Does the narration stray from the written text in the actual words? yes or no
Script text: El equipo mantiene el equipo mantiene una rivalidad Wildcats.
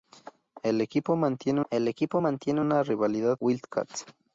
no